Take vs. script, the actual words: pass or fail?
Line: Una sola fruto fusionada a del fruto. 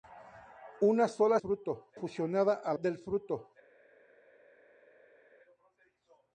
pass